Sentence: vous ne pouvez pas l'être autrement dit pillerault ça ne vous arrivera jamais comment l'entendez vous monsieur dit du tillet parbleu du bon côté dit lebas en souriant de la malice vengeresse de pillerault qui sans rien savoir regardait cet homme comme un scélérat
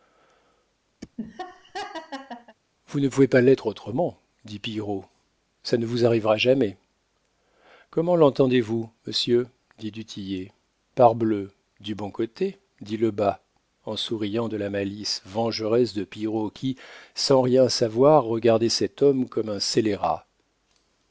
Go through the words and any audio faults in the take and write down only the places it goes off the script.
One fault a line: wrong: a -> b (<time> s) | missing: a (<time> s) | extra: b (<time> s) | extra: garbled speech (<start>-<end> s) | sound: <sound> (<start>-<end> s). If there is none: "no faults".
sound: laugh (1.0-2.6 s)